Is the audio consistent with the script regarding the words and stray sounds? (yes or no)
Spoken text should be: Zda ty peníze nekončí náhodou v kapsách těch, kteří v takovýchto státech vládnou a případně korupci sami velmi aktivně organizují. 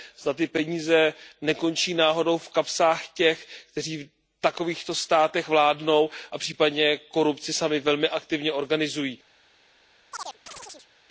no